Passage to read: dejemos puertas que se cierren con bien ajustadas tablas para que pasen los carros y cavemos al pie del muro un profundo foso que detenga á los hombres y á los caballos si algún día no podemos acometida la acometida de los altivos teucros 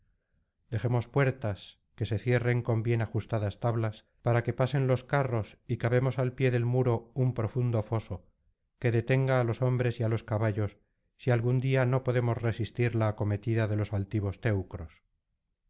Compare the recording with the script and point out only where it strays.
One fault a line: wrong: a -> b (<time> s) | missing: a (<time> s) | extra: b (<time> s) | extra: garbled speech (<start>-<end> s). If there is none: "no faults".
wrong: acometida -> resistir (12.4 s)